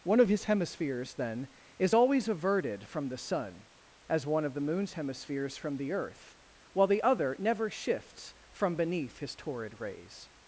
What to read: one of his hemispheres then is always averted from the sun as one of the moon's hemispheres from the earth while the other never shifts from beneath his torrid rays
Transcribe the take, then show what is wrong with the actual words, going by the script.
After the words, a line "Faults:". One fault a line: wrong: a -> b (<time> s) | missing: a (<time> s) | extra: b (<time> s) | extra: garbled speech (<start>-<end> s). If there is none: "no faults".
one of his hemispheres then is always averted from the sun as one of the moon's hemispheres from the earth while the other never shifts from beneath his torrid rays
Faults:
no faults